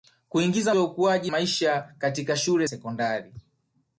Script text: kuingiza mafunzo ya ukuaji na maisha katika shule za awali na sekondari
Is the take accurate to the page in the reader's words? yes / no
no